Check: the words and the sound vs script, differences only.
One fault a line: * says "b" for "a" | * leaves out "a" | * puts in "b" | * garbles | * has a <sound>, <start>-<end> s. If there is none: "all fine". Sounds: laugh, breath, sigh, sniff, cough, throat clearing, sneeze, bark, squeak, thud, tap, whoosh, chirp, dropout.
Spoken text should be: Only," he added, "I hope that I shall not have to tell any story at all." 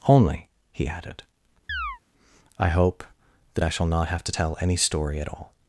* has a chirp, 1.7-2.0 s